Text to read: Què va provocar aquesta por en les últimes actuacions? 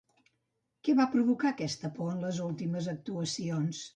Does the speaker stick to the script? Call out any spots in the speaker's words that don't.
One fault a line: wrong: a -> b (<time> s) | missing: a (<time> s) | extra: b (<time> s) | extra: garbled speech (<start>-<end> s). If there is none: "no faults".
no faults